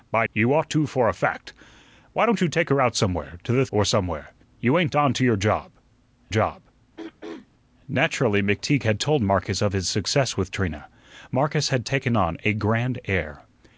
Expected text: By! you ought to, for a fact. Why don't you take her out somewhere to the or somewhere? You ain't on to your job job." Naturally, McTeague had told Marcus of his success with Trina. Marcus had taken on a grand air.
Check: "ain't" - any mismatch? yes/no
no